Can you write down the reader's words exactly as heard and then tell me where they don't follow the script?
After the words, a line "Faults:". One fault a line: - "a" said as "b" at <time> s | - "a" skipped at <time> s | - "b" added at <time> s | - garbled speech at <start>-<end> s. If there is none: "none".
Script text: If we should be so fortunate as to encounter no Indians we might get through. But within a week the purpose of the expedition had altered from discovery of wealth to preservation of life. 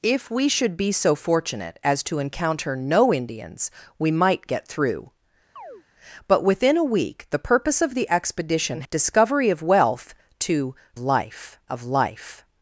If we should be so fortunate as to encounter no Indians we might get through. But within a week the purpose of the expedition discovery of wealth to life of life.
Faults:
- "had altered from" skipped at 8.8 s
- "preservation" said as "life" at 11.0 s